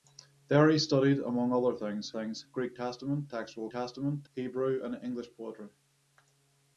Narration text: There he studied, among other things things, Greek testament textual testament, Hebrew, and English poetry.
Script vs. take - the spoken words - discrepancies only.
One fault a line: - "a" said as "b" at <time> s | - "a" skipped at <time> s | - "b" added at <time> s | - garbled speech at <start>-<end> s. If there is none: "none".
none